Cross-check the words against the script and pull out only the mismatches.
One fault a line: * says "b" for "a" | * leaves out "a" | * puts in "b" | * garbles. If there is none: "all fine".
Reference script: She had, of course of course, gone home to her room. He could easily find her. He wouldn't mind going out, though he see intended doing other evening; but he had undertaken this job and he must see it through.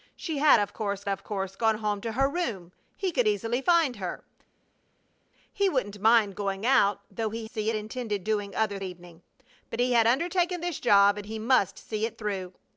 all fine